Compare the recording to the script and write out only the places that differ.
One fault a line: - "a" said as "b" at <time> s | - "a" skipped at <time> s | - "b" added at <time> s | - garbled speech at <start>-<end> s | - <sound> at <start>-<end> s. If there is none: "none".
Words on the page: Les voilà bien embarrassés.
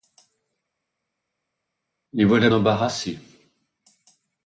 - "bien" skipped at 2.5 s